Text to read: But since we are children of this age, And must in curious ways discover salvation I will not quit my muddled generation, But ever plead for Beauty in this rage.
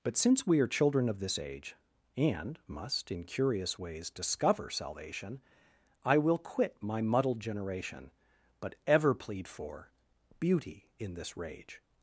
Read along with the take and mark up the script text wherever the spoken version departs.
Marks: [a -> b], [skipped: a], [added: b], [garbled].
But since we are children of this age, And must in curious ways discover salvation I will [skipped: not] quit my muddled generation, But ever plead for Beauty in this rage.